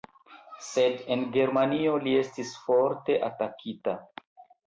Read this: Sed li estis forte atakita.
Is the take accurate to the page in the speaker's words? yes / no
no